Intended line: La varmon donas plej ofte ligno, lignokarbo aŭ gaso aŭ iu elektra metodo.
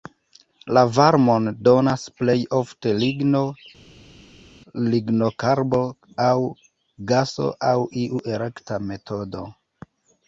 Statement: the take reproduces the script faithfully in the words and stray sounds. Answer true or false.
true